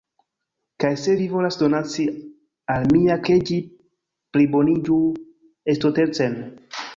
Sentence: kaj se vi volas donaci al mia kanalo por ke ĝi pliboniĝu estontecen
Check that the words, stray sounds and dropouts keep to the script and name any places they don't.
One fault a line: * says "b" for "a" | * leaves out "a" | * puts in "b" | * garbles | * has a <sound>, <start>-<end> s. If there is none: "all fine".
* leaves out "kanalo por"